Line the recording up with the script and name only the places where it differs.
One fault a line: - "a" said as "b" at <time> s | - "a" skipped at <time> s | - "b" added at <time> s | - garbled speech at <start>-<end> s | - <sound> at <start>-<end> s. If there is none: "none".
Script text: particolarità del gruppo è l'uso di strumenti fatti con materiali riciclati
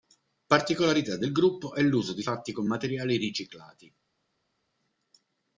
- "strumenti" skipped at 2.2 s